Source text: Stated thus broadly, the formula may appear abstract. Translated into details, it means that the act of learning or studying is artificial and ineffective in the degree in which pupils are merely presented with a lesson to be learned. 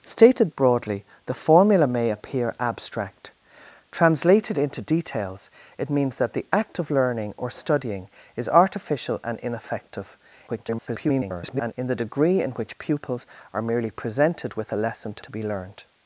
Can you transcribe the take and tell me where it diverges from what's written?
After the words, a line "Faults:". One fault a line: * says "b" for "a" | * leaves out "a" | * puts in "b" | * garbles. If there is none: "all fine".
Stated broadly, the formula may appear abstract. Translated into details, it means that the act of learning or studying is artificial and ineffective [garbled] in the degree in which pupils are merely presented with a lesson to to be learned.
Faults:
* leaves out "thus"
* garbles
* puts in "to"